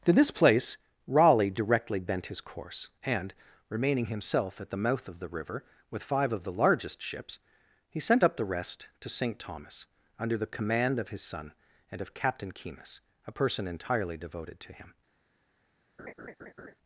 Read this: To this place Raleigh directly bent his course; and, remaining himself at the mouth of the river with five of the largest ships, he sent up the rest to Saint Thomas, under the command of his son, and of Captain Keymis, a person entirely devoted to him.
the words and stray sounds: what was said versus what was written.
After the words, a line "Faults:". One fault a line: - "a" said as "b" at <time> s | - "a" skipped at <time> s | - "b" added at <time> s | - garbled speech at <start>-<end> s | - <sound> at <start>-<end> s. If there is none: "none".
To this place Raleigh directly bent his course; and, remaining himself at the mouth of the river with five of the largest ships, he sent up the rest to Saint Thomas, under the command of his son, and of Captain Keymis, a person entirely devoted to him.
Faults:
- laugh at 16.0-16.8 s